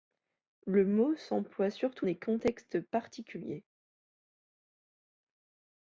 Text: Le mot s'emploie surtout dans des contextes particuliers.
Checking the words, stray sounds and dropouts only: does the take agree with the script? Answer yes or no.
no